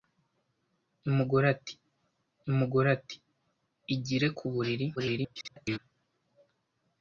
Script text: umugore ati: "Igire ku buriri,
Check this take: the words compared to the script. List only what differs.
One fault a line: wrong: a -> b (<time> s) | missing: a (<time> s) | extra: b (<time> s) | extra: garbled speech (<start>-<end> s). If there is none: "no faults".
extra: umugore ati (2.5 s)
extra: garbled speech (5.0-5.8 s)